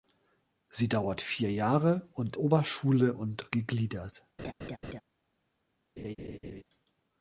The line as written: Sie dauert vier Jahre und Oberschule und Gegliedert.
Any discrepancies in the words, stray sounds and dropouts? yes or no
yes